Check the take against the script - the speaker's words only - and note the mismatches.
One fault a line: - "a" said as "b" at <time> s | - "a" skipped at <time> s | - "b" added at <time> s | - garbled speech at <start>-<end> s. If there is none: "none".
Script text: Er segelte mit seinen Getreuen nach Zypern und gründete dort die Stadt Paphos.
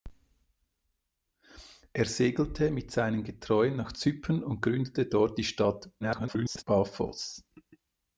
- garbled speech at 6.0-6.6 s